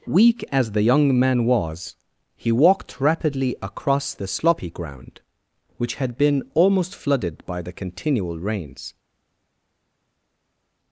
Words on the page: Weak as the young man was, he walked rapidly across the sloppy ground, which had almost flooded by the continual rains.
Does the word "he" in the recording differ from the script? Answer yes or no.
no